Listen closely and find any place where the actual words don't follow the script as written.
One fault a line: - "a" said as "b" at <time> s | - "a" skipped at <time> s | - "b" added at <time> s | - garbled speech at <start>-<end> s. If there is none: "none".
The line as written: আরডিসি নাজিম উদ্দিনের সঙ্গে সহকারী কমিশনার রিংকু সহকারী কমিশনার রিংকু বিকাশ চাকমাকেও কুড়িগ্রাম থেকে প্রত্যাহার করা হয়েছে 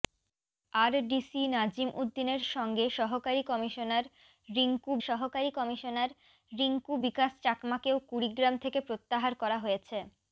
none